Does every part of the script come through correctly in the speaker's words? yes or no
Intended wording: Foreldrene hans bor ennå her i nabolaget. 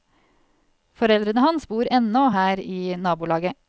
yes